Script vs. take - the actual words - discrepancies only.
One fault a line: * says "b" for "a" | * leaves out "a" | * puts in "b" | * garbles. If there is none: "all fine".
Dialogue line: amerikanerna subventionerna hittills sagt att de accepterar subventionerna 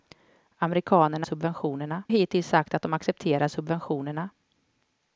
all fine